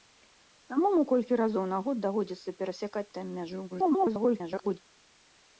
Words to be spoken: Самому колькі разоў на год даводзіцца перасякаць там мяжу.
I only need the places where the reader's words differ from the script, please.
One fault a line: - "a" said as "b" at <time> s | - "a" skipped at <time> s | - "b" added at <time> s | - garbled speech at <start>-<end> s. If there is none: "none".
- garbled speech at 3.7-4.8 s